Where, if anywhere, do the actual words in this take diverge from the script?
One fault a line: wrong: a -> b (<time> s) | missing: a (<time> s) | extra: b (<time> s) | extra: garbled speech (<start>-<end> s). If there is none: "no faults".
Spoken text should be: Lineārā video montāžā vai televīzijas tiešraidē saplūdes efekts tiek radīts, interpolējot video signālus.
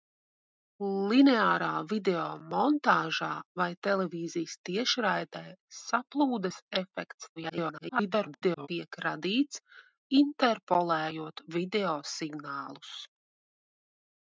extra: garbled speech (7.4-8.7 s)